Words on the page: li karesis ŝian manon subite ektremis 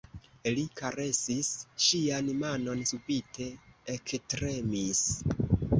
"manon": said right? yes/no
yes